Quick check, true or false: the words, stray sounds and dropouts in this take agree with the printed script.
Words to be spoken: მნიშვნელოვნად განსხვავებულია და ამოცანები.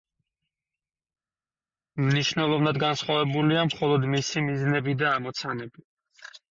false